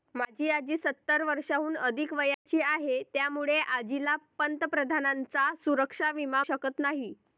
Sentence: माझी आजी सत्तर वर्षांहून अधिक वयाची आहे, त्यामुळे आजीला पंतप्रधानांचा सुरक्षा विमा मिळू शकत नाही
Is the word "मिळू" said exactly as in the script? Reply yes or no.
no